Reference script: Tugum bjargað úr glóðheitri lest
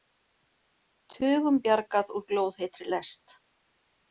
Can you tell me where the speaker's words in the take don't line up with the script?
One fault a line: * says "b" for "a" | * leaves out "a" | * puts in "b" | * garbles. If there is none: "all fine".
all fine